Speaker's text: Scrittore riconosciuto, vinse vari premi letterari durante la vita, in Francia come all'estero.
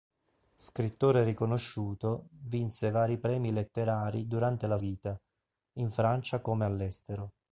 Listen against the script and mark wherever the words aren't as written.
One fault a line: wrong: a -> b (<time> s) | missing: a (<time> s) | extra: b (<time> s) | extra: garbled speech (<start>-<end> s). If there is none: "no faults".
no faults